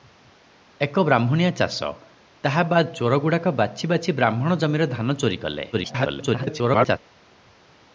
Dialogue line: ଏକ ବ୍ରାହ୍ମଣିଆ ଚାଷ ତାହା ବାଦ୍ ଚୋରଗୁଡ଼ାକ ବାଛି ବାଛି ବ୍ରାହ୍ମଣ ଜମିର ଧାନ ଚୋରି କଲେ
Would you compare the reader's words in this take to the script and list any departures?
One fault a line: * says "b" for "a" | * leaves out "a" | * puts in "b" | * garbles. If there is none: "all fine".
* garbles